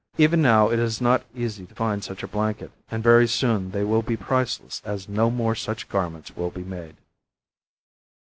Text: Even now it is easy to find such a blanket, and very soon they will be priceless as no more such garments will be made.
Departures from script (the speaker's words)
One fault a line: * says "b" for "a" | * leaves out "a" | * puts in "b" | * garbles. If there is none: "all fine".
* puts in "not"